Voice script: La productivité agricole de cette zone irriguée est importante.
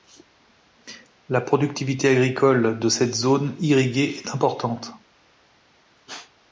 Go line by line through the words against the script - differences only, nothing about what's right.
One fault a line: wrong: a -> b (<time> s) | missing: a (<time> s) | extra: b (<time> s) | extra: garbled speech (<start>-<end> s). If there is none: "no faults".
no faults